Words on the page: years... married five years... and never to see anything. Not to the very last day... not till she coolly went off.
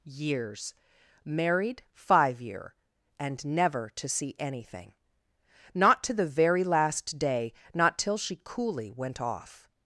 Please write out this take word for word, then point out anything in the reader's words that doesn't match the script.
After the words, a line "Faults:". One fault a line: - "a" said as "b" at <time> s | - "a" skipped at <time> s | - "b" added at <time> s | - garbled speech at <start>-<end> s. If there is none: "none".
years... married five year... and never to see anything. Not to the very last day... not till she coolly went off.
Faults:
- "years" said as "year" at 2.4 s